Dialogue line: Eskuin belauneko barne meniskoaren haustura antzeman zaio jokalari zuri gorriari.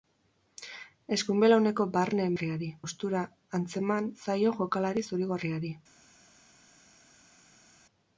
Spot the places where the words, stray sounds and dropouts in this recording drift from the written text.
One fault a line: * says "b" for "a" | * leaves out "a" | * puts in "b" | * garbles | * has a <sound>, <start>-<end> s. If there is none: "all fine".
* says "gorriari" for "meniskoaren"